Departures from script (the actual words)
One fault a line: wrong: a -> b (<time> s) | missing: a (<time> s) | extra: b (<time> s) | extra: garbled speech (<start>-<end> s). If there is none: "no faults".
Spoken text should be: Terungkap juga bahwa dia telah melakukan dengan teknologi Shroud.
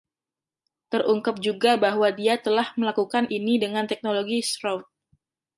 extra: ini (3.3 s)